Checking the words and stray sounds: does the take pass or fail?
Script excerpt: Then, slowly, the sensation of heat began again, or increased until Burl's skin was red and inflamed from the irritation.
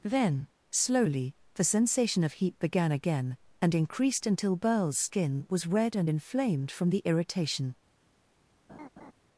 fail